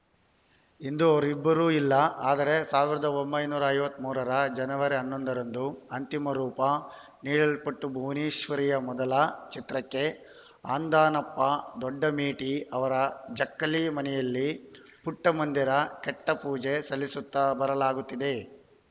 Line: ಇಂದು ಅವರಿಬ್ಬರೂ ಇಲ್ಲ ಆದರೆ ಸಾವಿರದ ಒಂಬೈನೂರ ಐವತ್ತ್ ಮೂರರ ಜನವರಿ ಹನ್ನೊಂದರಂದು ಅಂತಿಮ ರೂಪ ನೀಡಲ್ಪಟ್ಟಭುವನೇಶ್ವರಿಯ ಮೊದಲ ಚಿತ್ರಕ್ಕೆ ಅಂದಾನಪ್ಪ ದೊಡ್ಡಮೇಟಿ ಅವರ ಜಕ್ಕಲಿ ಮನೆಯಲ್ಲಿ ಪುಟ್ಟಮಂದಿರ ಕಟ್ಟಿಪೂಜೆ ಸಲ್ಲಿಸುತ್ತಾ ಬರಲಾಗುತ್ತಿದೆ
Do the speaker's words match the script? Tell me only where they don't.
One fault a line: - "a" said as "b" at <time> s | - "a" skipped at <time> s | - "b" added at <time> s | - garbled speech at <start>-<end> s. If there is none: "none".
none